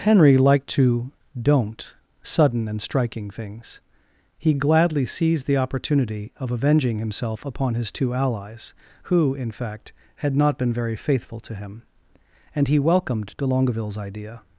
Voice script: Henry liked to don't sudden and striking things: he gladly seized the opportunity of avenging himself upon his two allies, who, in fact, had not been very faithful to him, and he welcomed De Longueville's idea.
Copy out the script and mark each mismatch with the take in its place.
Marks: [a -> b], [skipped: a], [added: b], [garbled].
Henry liked to don't sudden and striking things: he gladly seized the opportunity of avenging himself upon his two allies, who, in fact, had not been very faithful to him, and he welcomed De Longueville's idea.